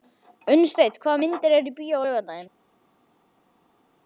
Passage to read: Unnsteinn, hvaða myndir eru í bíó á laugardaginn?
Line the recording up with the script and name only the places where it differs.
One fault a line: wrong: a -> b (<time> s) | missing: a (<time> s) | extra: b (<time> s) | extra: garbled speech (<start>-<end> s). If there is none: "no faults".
no faults